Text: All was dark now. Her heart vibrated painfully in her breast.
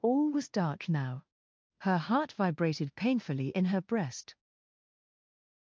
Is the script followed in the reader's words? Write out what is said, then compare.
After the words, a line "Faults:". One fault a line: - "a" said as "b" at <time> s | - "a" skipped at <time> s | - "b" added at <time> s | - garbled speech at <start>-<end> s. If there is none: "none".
All was dark now. Her heart vibrated painfully in her breast.
Faults:
none